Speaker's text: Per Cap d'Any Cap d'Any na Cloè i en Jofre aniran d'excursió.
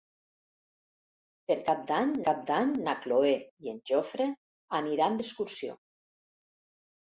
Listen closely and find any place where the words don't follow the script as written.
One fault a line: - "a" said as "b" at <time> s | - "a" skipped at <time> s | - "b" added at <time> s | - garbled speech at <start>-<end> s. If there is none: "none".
none